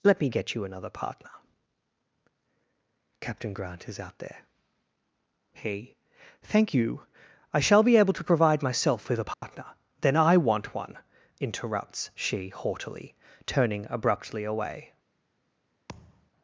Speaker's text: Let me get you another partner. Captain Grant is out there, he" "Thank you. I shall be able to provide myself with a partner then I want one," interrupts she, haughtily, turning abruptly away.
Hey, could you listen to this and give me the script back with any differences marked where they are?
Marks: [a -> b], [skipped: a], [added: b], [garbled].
Let me get you another partner. Captain Grant is out there, he" "Thank you. I shall be able to provide myself with a partner then I want one," interrupts she, haughtily, turning abruptly away.